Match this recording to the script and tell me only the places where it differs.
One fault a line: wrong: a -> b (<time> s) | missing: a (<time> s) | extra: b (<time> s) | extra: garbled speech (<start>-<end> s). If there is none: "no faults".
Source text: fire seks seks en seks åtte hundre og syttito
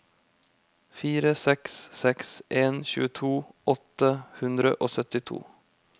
wrong: seks -> tjueto (2.9 s)